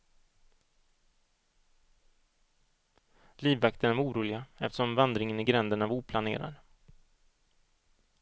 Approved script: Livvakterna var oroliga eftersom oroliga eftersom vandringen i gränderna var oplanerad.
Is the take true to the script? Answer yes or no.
no